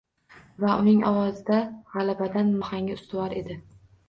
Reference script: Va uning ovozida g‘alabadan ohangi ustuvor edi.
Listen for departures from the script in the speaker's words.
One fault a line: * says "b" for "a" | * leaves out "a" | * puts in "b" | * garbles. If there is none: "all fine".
all fine